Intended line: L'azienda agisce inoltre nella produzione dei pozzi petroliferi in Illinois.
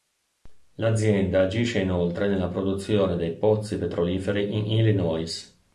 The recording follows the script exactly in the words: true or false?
true